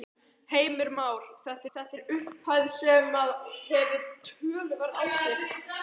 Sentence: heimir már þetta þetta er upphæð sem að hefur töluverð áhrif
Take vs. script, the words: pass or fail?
pass